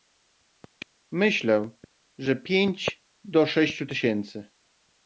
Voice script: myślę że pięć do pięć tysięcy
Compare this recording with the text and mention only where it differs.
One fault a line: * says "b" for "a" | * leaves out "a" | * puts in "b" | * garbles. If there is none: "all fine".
* says "sześciu" for "pięć"